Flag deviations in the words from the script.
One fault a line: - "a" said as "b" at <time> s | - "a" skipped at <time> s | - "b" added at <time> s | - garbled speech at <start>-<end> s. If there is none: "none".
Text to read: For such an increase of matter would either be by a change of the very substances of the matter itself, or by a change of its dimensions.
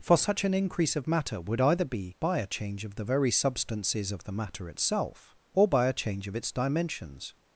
none